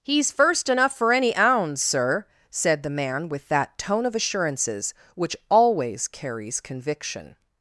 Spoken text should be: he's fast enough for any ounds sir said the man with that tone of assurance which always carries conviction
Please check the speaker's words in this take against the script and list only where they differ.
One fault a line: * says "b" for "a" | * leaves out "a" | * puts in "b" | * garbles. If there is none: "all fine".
* says "first" for "fast"
* says "assurances" for "assurance"